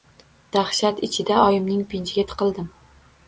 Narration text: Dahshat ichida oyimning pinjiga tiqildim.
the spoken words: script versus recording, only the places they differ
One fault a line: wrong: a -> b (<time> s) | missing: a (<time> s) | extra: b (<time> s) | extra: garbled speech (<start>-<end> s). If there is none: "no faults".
no faults